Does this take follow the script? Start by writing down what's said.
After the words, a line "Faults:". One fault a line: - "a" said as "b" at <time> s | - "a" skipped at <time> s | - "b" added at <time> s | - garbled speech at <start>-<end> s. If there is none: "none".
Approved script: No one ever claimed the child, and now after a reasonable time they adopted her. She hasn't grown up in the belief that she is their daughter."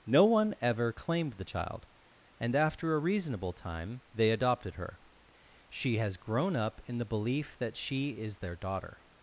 No one ever claimed the child, and after a reasonable time they adopted her. She has grown up in the belief that she is their daughter."
Faults:
- "now" skipped at 2.5 s
- "hasn't" said as "has" at 6.0 s